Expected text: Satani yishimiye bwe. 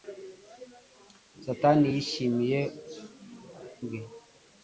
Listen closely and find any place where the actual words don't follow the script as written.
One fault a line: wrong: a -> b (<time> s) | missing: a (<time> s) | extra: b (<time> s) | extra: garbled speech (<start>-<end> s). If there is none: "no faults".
no faults